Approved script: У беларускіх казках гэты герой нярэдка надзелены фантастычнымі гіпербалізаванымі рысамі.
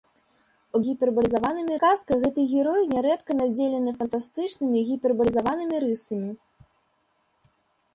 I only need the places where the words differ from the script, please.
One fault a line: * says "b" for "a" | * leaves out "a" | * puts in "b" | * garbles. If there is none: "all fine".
* says "гіпербалізаванымі" for "беларускіх"